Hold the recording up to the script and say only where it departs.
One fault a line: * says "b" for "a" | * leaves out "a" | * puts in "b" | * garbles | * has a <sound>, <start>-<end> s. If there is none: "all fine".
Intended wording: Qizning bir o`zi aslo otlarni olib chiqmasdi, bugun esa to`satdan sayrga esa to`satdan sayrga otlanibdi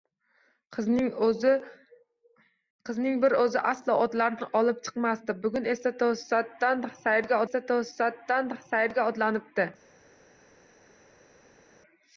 all fine